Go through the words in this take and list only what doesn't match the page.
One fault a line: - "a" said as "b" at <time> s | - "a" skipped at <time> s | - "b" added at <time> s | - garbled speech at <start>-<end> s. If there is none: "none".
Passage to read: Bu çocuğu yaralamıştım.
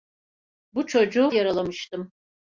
none